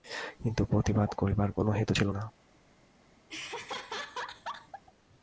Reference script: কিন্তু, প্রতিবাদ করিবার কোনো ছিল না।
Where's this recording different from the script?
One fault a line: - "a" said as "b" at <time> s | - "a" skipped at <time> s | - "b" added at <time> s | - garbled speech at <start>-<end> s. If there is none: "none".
- "হেতু" added at 1.7 s